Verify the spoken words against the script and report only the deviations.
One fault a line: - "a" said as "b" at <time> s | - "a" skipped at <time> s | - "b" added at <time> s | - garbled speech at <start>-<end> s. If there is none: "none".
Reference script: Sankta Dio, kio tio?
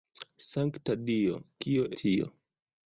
none